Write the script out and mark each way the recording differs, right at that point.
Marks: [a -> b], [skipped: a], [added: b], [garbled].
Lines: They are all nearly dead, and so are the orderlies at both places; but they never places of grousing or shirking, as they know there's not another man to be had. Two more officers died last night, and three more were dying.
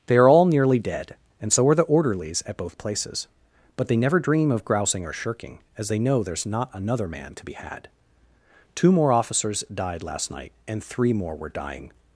They are all nearly dead, and so are the orderlies at both places; but they never [places -> dream] of grousing or shirking, as they know there's not another man to be had. Two more officers died last night, and three more were dying.